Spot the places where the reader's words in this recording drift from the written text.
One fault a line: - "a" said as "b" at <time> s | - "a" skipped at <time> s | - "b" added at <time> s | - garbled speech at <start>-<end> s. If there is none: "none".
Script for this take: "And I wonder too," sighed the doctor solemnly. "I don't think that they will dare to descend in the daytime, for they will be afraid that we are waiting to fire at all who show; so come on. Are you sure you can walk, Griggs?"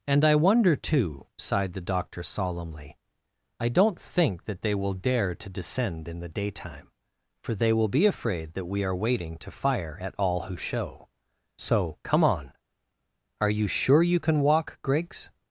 none